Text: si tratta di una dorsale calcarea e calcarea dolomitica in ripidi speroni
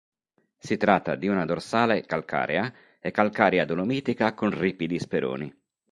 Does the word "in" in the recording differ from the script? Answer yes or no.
yes